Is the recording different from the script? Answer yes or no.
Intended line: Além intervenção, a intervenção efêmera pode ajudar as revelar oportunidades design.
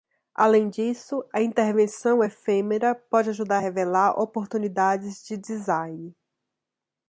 yes